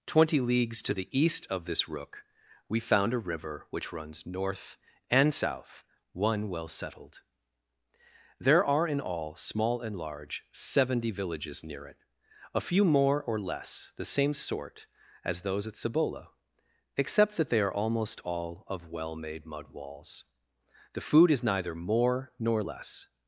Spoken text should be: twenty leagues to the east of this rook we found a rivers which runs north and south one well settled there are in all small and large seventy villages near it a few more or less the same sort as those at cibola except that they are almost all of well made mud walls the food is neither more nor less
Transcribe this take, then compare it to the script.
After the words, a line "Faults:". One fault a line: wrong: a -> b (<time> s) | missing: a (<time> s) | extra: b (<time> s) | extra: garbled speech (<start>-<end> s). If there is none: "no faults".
twenty leagues to the east of this rook we found a river which runs north and south one well settled there are in all small and large seventy villages near it a few more or less the same sort as those at cibola except that they are almost all of well made mud walls the food is neither more nor less
Faults:
wrong: rivers -> river (3.3 s)